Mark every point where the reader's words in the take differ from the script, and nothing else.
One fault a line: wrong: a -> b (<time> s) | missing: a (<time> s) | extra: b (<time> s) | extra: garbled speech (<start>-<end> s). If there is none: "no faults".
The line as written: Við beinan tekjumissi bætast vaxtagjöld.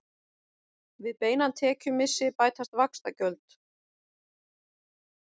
no faults